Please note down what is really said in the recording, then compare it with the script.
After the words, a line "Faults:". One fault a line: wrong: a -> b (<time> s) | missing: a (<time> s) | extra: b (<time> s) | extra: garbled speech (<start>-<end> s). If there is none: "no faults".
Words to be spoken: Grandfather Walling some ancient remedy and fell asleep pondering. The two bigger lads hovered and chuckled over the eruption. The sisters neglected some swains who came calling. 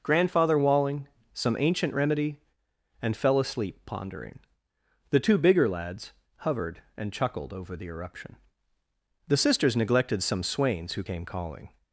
Grandfather Walling some ancient remedy and fell asleep pondering. The two bigger lads hovered and chuckled over the eruption. The sisters neglected some swains who came calling.
Faults:
no faults